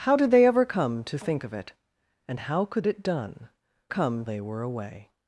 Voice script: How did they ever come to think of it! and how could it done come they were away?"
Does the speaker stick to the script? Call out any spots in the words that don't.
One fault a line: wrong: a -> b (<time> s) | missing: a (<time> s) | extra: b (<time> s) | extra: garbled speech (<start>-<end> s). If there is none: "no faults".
no faults